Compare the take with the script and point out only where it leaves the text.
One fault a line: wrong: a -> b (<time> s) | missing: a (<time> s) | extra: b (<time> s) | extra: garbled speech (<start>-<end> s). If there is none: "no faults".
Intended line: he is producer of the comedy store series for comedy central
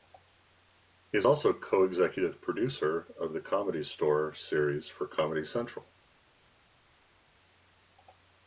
extra: also co executive (1.2 s)